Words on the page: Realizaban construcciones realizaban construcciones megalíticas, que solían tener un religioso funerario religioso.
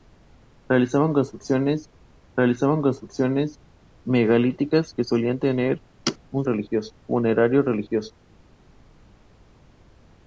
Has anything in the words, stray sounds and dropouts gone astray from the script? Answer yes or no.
no